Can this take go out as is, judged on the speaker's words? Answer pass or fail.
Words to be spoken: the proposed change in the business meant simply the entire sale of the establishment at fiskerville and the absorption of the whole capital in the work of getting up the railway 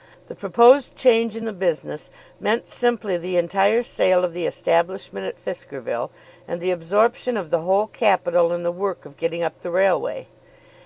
pass